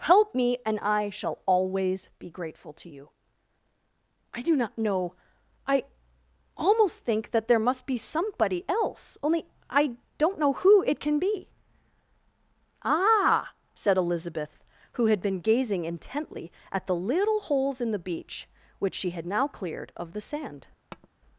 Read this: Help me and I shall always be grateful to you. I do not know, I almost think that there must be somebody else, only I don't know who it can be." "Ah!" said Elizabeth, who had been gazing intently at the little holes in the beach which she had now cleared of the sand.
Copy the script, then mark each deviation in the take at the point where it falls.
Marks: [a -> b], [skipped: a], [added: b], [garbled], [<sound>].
Help me and I shall always be grateful to you. I do not know, I almost think that there must be somebody else, only I don't know who it can be." "Ah!" said Elizabeth, who had been gazing intently at the little holes in the beach which she had now cleared of the sand. [tap]